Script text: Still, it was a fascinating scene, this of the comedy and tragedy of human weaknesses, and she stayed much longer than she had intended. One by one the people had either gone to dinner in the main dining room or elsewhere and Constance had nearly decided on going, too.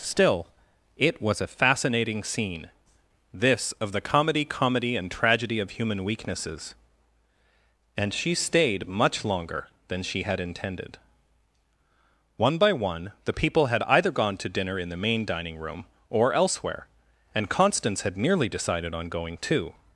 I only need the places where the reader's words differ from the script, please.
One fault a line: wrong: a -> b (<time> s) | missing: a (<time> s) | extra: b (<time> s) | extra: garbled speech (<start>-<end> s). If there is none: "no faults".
extra: comedy (4.4 s)